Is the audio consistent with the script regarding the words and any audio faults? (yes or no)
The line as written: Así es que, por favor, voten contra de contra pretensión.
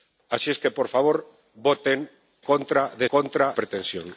yes